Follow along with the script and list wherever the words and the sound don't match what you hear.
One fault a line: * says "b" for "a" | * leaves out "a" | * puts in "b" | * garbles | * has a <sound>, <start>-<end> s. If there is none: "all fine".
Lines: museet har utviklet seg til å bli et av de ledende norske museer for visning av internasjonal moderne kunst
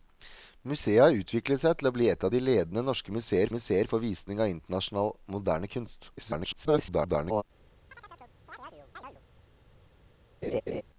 * puts in "museer"
* garbles
* has a chirp, 7.9-9.2 s
* has a laugh, 10.4-10.8 s